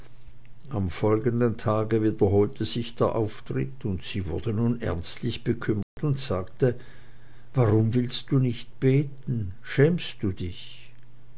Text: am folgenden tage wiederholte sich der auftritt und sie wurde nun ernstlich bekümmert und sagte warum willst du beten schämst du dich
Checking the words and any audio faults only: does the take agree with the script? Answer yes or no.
no